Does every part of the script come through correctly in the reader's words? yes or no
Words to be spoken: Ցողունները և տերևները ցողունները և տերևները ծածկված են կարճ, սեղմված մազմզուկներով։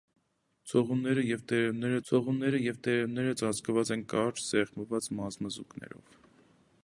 yes